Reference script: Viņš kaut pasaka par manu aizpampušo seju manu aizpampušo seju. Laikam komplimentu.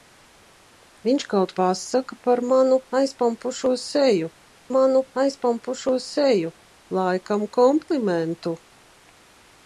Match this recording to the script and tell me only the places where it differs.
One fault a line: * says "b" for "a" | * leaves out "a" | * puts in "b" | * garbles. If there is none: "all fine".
all fine